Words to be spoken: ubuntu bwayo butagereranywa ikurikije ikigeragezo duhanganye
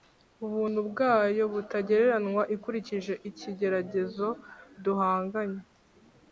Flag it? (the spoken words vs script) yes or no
no